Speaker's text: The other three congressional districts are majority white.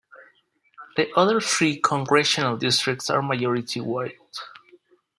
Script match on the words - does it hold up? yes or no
yes